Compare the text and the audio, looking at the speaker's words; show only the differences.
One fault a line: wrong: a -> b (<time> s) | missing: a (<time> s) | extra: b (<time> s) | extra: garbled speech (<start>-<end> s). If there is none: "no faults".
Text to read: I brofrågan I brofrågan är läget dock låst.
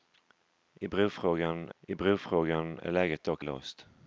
no faults